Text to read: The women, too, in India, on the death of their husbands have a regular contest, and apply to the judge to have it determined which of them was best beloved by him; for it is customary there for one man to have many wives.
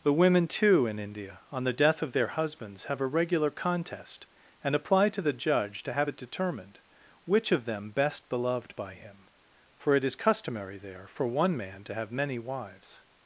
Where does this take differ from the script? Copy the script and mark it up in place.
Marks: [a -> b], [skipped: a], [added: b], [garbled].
The women, too, in India, on the death of their husbands have a regular contest, and apply to the judge to have it determined which of them [skipped: was] best beloved by him; for it is customary there for one man to have many wives.